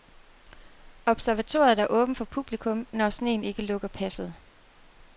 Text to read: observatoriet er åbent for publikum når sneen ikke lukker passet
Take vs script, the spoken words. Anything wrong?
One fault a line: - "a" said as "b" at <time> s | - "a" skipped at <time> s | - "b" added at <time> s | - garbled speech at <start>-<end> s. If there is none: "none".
none